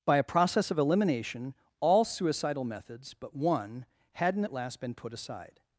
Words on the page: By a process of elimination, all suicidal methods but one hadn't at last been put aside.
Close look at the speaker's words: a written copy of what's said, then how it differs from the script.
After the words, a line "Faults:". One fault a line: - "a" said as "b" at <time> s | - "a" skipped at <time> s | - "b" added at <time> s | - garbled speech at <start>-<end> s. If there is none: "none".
By a process of elimination, all suicidal methods but one hadn't at last been put aside.
Faults:
none